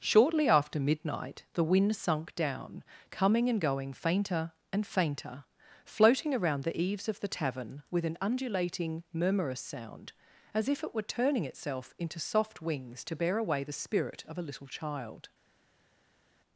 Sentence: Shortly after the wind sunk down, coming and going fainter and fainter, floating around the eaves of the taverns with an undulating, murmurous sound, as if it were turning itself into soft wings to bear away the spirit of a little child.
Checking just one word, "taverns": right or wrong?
wrong